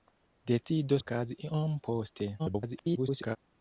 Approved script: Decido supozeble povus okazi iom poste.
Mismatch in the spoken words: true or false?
true